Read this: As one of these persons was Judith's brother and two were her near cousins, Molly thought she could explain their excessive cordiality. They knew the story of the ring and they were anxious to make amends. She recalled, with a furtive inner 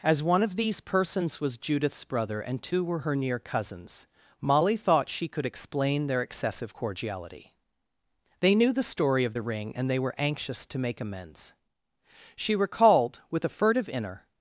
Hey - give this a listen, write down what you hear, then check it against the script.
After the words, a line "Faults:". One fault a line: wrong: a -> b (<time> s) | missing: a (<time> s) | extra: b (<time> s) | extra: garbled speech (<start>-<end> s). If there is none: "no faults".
As one of these persons was Judith's brother and two were her near cousins, Molly thought she could explain their excessive cordiality. They knew the story of the ring and they were anxious to make amends. She recalled, with a furtive inner
Faults:
no faults